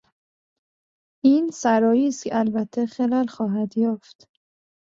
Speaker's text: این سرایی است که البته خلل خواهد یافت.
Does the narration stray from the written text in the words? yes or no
no